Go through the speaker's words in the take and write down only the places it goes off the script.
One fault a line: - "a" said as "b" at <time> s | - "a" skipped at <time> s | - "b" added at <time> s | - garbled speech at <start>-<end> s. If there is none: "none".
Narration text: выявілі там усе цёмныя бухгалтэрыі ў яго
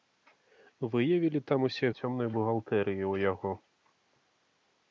none